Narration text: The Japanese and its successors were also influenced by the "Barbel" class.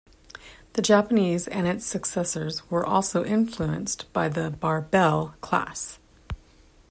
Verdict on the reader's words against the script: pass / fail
pass